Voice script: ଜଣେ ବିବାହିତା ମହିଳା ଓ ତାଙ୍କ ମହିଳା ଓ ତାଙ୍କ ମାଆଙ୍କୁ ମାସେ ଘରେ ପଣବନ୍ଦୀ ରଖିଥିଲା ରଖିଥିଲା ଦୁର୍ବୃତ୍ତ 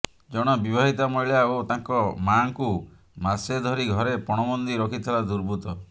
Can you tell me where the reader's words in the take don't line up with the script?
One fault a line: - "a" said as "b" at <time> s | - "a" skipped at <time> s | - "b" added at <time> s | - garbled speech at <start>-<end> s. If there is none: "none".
- "ମହିଳା ଓ ତାଙ୍କ" skipped at 2.0 s
- "ଧରି" added at 3.7 s
- "ରଖିଥିଲା" skipped at 5.3 s